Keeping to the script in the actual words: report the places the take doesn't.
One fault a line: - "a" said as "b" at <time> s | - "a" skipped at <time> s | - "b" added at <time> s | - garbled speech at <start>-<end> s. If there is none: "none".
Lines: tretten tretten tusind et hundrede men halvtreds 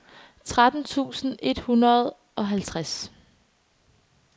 - "tretten" skipped at 0.8 s
- "men" said as "og" at 2.4 s